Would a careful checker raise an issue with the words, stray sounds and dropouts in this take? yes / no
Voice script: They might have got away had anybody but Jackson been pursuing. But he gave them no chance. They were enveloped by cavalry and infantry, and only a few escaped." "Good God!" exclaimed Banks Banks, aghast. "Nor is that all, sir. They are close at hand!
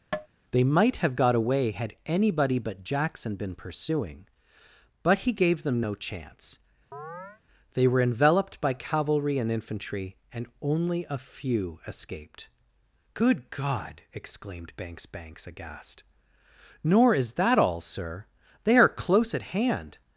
yes